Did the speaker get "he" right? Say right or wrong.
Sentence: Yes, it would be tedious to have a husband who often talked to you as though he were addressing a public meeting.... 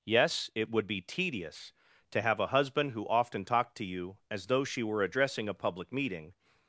wrong